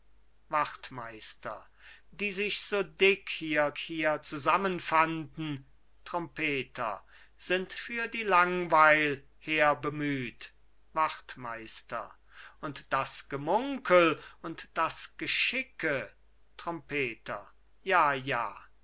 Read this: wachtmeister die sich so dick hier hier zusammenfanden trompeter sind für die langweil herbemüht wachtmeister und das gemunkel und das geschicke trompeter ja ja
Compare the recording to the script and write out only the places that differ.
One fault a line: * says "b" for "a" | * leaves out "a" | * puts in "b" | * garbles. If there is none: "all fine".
all fine